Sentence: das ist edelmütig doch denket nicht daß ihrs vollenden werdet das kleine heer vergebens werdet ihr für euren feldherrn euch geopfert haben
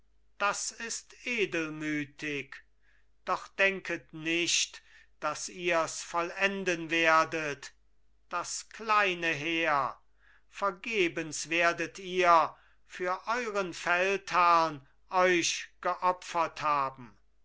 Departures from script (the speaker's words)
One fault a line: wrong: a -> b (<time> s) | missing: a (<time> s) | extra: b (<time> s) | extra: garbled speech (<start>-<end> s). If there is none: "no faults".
no faults